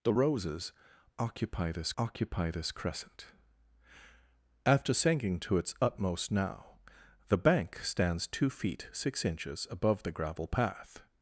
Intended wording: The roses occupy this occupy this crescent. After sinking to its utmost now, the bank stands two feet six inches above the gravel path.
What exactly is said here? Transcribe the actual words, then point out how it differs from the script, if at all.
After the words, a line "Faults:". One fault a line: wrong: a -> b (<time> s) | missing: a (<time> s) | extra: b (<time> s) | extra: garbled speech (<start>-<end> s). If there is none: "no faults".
The roses occupy this occupy this crescent. After sinking to its utmost now, the bank stands two feet six inches above the gravel path.
Faults:
no faults